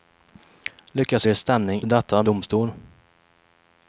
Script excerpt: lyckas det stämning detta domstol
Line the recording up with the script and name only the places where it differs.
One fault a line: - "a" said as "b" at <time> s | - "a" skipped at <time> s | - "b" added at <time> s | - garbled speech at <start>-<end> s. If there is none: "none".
none